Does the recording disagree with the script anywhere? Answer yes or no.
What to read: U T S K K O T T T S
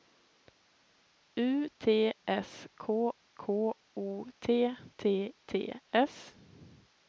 no